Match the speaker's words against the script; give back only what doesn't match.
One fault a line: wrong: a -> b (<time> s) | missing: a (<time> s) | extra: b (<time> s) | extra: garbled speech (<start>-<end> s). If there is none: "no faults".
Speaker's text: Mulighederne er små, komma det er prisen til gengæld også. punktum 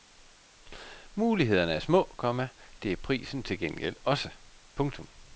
no faults